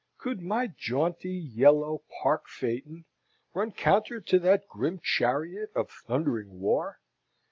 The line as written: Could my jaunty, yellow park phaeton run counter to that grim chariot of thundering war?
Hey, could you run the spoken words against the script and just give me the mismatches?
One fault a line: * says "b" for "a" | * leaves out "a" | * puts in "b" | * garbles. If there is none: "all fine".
all fine